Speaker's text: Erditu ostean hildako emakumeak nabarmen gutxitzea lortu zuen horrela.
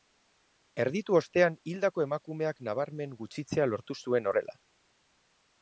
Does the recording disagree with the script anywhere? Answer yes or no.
no